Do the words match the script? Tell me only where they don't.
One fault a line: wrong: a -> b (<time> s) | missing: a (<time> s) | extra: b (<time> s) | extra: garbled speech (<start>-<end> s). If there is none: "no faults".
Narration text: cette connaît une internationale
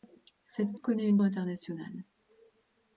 no faults